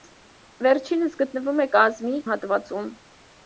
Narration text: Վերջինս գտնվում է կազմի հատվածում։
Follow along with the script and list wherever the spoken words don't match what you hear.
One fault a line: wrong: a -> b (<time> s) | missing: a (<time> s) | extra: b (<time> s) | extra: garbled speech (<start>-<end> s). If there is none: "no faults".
no faults